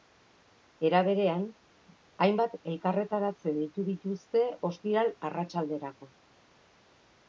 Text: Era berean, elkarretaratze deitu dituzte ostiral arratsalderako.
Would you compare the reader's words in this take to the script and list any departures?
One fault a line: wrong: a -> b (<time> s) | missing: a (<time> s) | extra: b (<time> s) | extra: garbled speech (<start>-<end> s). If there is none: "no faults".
extra: hainbat (2.3 s)